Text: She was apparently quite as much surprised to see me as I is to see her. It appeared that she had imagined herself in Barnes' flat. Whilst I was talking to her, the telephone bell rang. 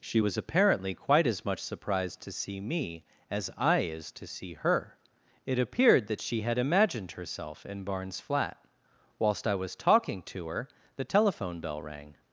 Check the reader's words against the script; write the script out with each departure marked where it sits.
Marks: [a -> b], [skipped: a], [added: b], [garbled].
She was apparently quite as much surprised to see me as I is to see her. It appeared that she had imagined herself in Barnes' flat. Whilst I was talking to her, the telephone bell rang.